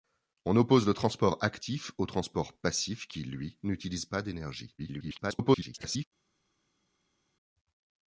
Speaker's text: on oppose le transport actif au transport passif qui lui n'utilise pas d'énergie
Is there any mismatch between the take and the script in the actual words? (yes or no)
yes